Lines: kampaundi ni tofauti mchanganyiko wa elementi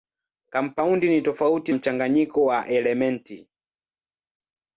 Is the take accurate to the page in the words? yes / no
yes